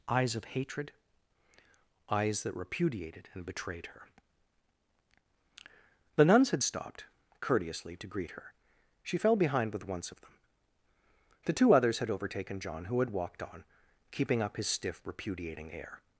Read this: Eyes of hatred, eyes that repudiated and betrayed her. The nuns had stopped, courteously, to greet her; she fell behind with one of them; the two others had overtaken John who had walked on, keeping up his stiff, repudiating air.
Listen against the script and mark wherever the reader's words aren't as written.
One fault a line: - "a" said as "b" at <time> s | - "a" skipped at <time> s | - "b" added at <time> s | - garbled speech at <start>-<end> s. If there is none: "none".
- "one" said as "once" at 9.9 s